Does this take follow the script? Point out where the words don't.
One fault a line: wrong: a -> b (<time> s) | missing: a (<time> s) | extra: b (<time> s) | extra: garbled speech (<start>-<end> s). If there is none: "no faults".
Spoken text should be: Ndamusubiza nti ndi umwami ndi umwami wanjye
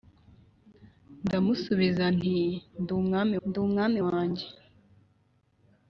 no faults